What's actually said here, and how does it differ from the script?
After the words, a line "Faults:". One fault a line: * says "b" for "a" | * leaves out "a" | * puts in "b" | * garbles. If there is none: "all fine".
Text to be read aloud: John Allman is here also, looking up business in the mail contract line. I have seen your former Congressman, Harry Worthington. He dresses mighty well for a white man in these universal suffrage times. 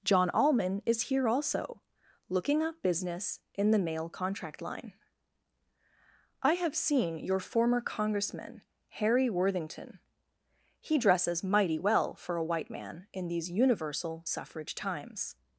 John Allman is here also, looking up business in the mail contract line. I have seen your former Congressman, Harry Worthington. He dresses mighty well for a white man in these universal suffrage times.
Faults:
all fine